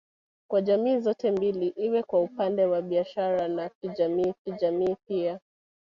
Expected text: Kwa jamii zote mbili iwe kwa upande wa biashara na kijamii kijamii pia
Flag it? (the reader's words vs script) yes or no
no